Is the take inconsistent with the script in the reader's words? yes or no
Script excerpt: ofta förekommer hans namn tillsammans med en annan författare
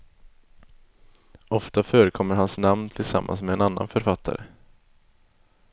no